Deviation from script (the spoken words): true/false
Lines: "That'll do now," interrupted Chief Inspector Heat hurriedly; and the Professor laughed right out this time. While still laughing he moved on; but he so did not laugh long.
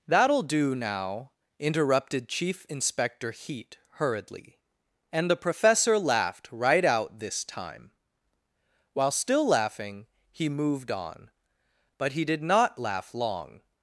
true